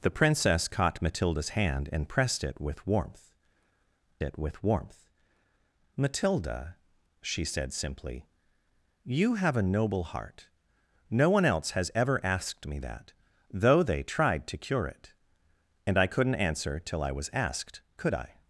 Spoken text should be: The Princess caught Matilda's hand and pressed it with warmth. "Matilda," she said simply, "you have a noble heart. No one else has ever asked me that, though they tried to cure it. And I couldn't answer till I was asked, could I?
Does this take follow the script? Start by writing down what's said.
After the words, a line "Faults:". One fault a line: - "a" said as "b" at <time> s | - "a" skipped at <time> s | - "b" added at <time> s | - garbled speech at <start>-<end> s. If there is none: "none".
The Princess caught Matilda's hand and pressed it with warmth it with warmth. "Matilda," she said simply, "you have a noble heart. No one else has ever asked me that, though they tried to cure it. And I couldn't answer till I was asked, could I?
Faults:
- "it with warmth" added at 4.2 s